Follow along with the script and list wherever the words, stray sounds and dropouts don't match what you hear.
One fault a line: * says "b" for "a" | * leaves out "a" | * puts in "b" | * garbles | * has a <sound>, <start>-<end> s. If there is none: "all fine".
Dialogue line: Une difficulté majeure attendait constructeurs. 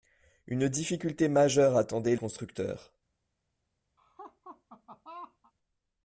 * has a laugh, 4.0-5.5 s